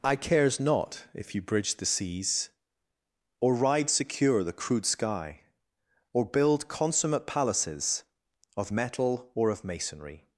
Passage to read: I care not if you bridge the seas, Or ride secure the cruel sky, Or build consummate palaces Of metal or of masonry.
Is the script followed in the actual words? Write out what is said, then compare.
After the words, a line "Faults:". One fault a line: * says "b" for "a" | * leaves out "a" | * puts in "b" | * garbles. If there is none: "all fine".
I cares not if you bridge the seas, Or ride secure the crude sky, Or build consummate palaces Of metal or of masonry.
Faults:
* says "cares" for "care"
* says "crude" for "cruel"